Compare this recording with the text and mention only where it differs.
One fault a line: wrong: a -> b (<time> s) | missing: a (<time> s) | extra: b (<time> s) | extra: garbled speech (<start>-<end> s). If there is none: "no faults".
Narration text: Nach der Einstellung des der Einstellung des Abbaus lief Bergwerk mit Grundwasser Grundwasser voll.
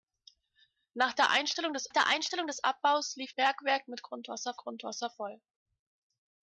no faults